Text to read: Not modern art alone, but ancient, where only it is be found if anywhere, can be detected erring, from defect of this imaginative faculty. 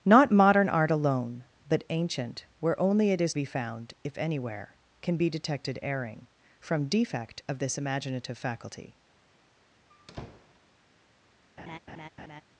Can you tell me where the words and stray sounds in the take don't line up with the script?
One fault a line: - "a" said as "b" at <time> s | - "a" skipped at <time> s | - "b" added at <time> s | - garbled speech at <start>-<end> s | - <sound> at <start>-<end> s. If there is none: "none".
- squeak at 9.9-10.6 s
- laugh at 11.6-12.4 s